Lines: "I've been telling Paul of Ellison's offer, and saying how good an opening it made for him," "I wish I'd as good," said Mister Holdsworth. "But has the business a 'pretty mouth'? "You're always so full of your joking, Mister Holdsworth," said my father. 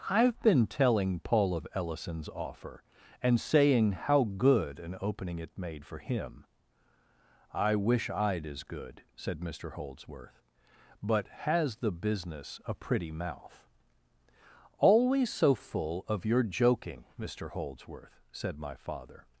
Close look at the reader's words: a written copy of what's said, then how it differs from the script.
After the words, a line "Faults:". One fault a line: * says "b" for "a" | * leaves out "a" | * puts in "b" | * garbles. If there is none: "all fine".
"I've been telling Paul of Ellison's offer, and saying how good an opening it made for him," "I wish I'd as good," said Mister Holdsworth. "But has the business a 'pretty mouth'? "always so full of your joking, Mister Holdsworth," said my father.
Faults:
* leaves out "You're"